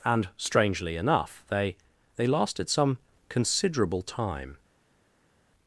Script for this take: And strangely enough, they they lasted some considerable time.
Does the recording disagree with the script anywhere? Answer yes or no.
no